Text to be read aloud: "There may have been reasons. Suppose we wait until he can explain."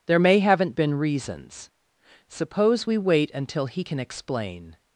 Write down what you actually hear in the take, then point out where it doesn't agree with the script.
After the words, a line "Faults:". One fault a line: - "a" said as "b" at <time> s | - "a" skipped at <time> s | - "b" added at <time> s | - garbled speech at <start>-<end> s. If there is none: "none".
"There may haven't been reasons. Suppose we wait until he can explain."
Faults:
- "have" said as "haven't" at 0.4 s